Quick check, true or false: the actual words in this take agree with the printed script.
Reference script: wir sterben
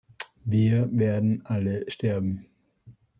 false